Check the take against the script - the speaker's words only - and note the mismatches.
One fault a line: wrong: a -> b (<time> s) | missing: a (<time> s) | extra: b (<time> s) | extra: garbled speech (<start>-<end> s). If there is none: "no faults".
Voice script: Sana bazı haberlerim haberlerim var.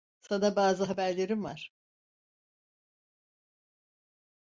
missing: haberlerim (1.5 s)